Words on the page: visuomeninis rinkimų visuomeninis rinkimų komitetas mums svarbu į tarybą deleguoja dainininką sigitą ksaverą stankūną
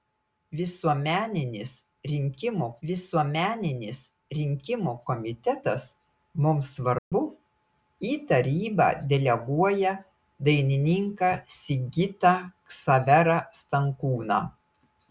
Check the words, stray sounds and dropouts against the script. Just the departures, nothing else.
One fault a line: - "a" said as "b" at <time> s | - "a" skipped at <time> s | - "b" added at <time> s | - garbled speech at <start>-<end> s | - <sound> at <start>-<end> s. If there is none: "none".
- dropout at 7.0-7.1 s